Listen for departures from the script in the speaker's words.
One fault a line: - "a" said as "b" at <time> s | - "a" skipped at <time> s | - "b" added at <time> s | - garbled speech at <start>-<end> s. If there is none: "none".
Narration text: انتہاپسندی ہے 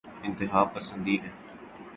none